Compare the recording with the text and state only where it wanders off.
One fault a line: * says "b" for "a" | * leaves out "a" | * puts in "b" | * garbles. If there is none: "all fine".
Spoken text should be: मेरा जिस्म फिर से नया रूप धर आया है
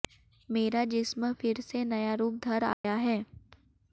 all fine